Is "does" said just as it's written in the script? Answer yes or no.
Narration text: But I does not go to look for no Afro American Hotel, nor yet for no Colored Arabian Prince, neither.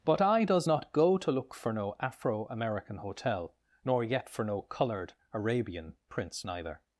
yes